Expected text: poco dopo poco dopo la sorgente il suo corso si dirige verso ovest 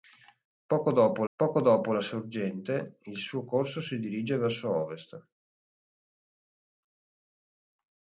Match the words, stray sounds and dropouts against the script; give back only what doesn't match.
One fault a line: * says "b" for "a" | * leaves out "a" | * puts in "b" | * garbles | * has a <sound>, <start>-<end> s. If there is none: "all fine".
all fine